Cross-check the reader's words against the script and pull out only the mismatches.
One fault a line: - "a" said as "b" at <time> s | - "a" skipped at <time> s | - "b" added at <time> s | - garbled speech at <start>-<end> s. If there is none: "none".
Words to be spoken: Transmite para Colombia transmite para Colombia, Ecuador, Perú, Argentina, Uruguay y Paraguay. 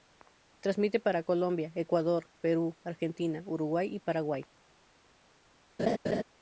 - "transmite para Colombia" skipped at 1.7 s